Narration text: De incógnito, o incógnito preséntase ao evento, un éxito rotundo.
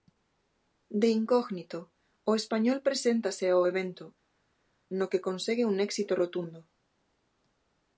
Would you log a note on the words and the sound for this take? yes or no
yes